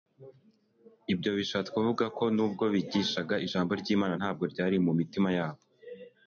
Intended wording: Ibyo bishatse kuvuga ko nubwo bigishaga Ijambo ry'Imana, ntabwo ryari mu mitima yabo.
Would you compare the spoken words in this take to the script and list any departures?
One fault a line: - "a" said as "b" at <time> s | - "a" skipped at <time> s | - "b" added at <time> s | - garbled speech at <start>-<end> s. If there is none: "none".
none